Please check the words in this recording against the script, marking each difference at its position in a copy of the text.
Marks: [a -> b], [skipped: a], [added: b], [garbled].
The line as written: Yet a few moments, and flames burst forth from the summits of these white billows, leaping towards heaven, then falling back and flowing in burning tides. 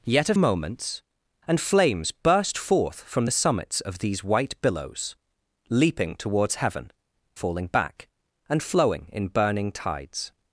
Yet a [skipped: few] moments, and flames burst forth from the summits of these white billows, leaping towards heaven, [skipped: then] falling back and flowing in burning tides.